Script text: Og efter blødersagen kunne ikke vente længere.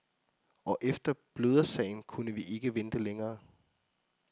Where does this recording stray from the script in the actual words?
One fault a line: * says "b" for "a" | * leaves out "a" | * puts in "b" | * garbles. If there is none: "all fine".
* puts in "vi"